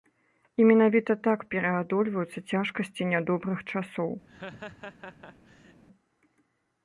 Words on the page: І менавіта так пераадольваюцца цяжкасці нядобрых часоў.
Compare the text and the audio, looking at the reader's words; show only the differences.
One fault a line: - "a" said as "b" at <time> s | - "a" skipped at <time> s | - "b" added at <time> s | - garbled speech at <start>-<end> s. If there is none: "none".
none